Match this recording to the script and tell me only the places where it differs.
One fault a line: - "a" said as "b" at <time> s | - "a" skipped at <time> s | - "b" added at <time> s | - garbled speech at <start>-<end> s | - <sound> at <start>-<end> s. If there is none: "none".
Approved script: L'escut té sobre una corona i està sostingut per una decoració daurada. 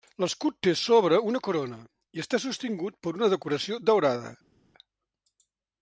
none